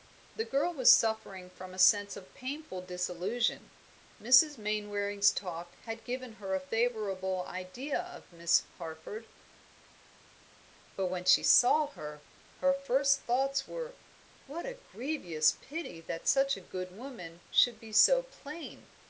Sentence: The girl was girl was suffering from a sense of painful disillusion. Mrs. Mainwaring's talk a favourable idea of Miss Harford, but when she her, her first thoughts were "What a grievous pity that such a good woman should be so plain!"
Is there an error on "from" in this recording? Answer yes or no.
no